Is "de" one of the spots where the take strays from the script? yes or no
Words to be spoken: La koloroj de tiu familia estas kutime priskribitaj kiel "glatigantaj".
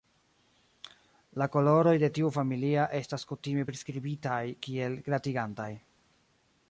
no